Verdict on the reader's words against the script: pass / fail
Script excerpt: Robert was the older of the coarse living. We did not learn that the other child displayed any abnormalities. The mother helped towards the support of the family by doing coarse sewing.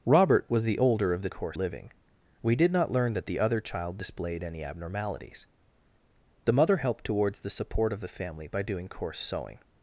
pass